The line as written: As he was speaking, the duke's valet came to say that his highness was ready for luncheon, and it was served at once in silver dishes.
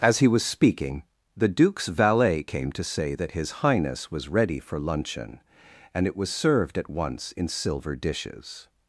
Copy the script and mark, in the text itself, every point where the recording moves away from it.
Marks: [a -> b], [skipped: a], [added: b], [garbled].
As he was speaking, the duke's valet came to say that his highness was ready for luncheon, and it was served at once in silver dishes.